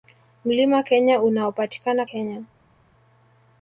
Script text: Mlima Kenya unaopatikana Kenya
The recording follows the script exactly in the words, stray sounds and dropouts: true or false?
true